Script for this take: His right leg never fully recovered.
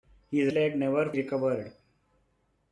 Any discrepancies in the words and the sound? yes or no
yes